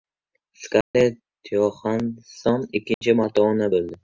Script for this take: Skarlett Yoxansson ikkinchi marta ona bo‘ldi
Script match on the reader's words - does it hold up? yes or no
yes